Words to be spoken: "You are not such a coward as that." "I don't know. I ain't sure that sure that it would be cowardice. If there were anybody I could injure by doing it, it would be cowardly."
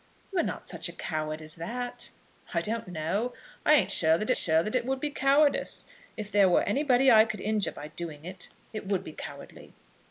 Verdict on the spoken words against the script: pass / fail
pass